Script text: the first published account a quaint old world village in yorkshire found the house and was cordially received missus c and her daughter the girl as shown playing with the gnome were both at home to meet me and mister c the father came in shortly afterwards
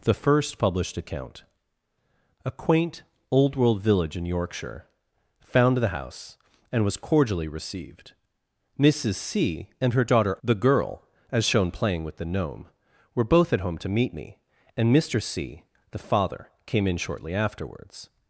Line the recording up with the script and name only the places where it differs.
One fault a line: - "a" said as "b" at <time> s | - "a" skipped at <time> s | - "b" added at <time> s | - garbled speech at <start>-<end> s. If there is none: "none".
none